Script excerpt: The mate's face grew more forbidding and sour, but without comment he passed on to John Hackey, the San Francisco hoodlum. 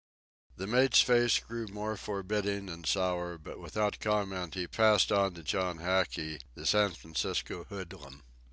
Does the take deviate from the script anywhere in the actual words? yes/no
no